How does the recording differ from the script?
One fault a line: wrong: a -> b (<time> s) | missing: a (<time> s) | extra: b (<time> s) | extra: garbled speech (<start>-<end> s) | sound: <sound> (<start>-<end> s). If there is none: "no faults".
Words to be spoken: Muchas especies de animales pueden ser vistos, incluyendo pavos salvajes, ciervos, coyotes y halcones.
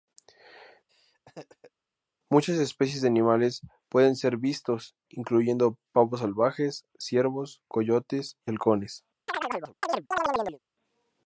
sound: laugh (0.9-1.7 s)
sound: chirp (9.3-10.6 s)